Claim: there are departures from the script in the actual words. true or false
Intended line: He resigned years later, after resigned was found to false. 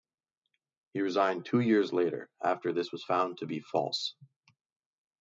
true